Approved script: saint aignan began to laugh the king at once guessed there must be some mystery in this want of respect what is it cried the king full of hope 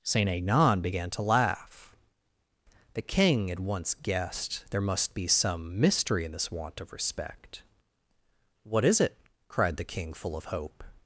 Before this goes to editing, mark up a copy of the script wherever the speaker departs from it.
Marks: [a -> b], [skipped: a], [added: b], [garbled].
saint aignan began to laugh the king at once guessed there must be some mystery in this want of respect what is it cried the king full of hope